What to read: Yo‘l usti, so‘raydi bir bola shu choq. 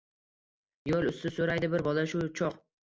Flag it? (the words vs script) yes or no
no